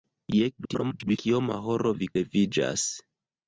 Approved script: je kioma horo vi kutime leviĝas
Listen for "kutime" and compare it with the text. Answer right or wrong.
wrong